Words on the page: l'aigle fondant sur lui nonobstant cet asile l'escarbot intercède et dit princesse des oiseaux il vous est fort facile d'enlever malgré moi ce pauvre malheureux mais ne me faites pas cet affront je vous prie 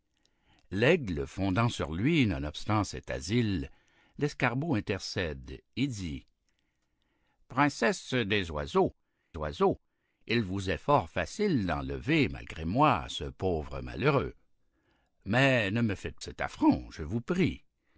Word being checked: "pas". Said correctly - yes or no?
no